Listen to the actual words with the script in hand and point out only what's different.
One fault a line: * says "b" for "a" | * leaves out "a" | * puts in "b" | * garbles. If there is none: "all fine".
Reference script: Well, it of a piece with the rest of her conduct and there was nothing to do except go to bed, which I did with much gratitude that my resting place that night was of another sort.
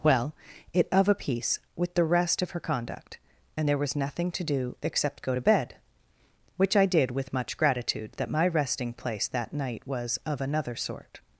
all fine